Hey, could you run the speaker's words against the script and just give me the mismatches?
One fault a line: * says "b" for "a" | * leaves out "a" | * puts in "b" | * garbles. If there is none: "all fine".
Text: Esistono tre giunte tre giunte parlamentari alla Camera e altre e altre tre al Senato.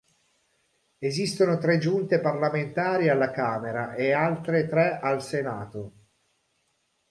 * leaves out "tre giunte"
* leaves out "e altre"